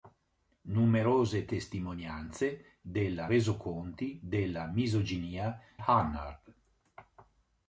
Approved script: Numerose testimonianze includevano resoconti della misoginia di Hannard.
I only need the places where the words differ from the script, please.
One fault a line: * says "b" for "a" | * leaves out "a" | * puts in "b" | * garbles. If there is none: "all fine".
* says "della" for "includevano"
* leaves out "di"